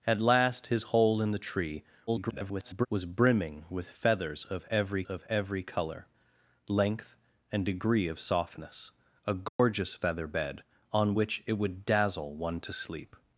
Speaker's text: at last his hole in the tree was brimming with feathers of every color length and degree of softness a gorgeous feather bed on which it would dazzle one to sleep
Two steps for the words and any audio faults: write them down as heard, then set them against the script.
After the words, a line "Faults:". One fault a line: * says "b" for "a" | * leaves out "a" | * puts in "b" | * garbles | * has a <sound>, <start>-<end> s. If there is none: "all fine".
at last his hole in the tree [garbled] was brimming with feathers of every of every color length and degree of softness a gorgeous feather bed on which it would dazzle one to sleep
Faults:
* garbles
* puts in "of every"
* has a dropout, 9.5-9.6 s